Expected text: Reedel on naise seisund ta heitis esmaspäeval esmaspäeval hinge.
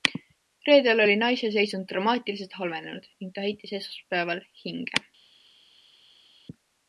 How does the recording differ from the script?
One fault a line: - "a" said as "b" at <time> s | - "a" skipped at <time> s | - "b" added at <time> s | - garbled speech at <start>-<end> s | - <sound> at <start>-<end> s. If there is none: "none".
- "on" said as "oli" at 1.0 s
- "dramaatiliselt halvenenud ning" added at 1.9 s
- "esmaspäeval" skipped at 4.5 s